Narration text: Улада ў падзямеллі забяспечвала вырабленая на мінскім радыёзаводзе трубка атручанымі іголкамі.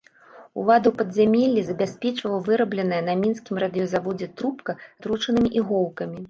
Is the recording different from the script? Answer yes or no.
no